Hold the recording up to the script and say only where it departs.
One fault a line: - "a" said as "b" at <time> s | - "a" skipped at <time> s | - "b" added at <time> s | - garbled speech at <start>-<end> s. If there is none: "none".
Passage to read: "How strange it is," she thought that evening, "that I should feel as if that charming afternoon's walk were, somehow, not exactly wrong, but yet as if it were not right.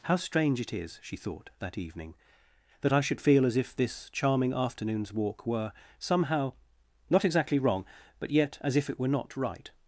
- "that" said as "this" at 3.8 s